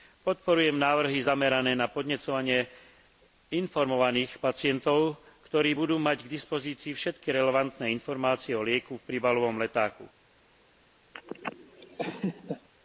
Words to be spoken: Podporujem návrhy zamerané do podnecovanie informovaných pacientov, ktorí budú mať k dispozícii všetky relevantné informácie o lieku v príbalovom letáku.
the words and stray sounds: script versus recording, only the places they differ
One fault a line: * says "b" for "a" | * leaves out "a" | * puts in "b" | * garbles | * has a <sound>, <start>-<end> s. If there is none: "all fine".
* says "na" for "do"
* has a laugh, 11.1-12.7 s